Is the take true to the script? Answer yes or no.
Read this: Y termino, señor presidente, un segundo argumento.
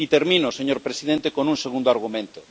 no